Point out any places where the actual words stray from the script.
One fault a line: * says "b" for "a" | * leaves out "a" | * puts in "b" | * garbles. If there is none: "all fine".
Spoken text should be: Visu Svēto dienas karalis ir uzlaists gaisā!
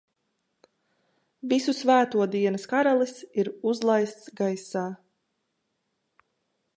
all fine